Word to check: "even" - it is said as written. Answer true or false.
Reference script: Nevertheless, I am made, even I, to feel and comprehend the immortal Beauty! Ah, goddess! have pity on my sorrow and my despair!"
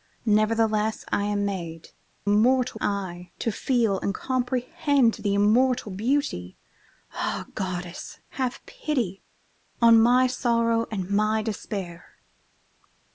false